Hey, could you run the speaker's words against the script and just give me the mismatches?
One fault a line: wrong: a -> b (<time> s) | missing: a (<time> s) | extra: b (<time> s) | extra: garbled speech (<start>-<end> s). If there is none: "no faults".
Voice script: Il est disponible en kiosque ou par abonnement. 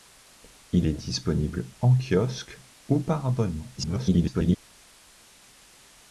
extra: garbled speech (3.8-4.6 s)